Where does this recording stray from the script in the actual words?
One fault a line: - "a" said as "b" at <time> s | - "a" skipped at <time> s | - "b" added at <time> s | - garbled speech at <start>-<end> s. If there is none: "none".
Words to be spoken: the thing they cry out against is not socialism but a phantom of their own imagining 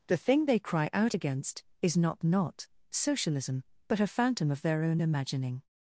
- "not" added at 2.2 s